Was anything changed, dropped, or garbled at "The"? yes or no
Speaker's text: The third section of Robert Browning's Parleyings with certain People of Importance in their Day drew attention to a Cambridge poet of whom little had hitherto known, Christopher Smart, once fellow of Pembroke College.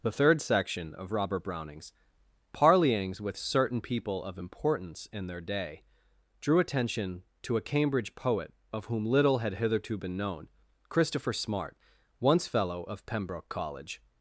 no